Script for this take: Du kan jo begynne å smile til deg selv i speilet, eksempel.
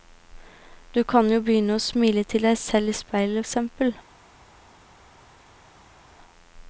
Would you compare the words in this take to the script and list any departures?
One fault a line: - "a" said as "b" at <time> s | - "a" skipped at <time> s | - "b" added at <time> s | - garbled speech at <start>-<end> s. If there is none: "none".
none